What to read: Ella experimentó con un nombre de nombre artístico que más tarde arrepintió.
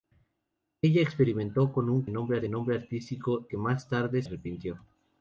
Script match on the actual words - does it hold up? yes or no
yes